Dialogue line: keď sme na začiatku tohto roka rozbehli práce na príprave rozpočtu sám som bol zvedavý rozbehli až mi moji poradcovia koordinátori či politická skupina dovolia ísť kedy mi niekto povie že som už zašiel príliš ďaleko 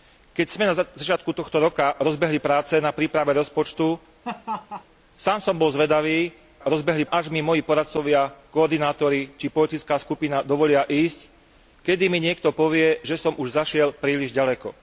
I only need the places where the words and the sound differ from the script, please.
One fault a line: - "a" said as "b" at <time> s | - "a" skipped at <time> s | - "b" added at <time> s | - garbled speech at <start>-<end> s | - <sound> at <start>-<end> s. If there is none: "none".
- laugh at 4.2-4.8 s